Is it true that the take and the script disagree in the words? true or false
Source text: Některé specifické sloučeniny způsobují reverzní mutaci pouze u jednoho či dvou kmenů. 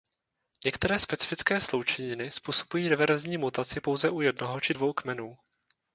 false